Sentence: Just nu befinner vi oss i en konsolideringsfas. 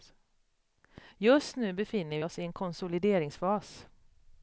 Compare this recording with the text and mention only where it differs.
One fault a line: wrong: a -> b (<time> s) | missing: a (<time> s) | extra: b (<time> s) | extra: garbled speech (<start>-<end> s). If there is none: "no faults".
missing: vi (2.2 s)